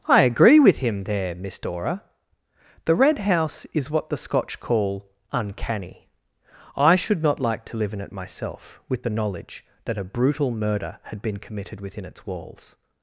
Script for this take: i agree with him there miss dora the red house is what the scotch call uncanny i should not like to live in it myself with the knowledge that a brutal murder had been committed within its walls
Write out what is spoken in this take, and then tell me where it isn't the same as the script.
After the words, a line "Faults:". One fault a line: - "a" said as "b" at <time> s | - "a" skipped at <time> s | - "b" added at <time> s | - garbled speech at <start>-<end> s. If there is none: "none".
i agree with him there miss dora the red house is what the scotch call uncanny i should not like to live in it myself with the knowledge that a brutal murder had been committed within its walls
Faults:
none